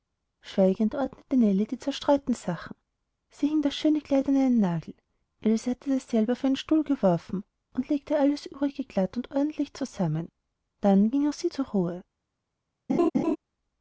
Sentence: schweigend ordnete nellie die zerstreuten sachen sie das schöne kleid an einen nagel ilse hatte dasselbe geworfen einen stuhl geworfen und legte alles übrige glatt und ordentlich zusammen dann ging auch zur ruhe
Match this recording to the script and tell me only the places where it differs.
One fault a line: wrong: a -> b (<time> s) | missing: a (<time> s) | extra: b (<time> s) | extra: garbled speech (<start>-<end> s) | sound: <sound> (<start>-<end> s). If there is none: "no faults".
extra: hing (3.5 s)
wrong: geworfen -> auf (6.3 s)
extra: sie (11.3 s)
sound: laugh (12.9-13.4 s)